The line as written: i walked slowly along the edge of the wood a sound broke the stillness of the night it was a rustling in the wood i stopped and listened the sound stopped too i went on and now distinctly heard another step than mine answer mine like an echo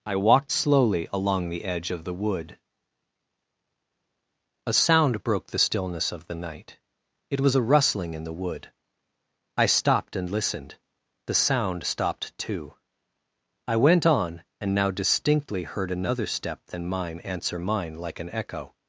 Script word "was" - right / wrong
right